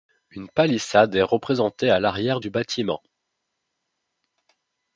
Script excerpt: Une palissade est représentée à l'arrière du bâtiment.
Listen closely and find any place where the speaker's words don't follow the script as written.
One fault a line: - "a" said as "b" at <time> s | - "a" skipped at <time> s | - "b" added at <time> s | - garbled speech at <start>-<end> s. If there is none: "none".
none